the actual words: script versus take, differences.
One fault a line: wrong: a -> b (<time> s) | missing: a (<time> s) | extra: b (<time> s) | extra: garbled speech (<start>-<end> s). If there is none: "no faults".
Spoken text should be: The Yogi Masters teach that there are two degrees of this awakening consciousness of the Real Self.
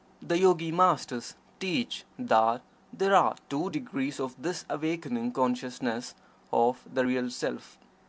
no faults